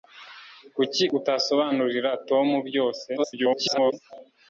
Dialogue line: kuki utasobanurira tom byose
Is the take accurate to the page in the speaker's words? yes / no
no